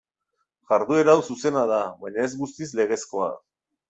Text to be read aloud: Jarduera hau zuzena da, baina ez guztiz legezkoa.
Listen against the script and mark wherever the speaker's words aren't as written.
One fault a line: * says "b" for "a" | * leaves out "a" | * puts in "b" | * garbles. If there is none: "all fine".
all fine